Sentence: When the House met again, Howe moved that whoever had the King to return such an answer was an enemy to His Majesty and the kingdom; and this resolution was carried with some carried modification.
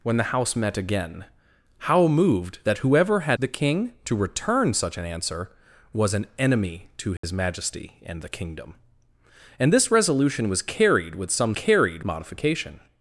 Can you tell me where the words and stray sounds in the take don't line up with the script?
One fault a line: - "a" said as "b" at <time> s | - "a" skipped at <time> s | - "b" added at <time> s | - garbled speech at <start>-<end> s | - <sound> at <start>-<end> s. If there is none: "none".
- dropout at 7.2-7.2 s